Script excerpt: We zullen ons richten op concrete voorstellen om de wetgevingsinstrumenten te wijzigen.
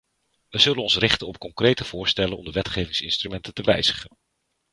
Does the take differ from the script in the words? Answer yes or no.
no